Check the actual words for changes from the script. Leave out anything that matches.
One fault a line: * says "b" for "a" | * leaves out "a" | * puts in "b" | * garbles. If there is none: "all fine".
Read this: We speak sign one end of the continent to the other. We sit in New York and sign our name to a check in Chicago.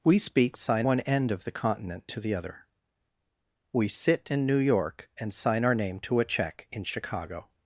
all fine